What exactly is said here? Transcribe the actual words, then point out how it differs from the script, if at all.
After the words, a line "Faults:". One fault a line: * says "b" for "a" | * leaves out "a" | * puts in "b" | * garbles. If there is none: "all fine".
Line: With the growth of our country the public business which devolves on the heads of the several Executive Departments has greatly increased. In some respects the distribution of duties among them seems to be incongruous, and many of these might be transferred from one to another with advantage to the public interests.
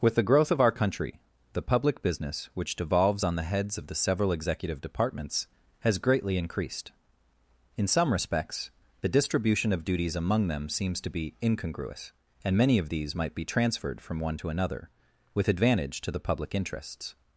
With the growth of our country the public business which devolves on the heads of the several Executive Departments has greatly increased. In some respects the distribution of duties among them seems to be incongruous, and many of these might be transferred from one to another with advantage to the public interests.
Faults:
all fine